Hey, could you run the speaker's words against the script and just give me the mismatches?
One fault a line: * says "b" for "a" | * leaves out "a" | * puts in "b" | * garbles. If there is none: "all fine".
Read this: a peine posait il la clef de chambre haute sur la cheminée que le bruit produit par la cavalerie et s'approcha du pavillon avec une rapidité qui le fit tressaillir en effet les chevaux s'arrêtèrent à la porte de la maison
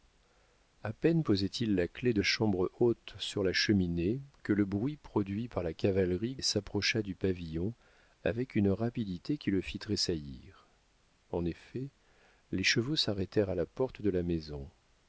all fine